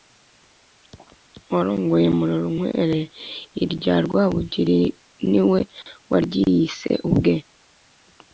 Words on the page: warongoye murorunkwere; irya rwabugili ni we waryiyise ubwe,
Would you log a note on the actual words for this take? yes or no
no